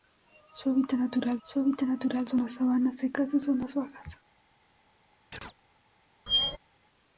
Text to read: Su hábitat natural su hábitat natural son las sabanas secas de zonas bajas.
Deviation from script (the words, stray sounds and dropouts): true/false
true